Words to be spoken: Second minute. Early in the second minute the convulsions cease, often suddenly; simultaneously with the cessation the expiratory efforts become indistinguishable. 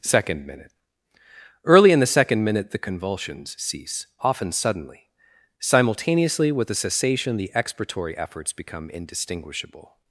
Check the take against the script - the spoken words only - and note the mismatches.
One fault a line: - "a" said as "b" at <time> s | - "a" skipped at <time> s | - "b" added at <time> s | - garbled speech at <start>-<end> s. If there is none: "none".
none